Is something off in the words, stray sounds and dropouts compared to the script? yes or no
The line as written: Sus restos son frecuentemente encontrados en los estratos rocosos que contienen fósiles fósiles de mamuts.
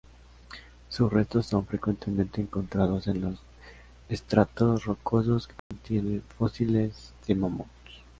yes